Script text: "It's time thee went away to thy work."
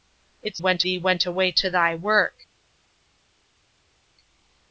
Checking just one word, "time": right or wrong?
wrong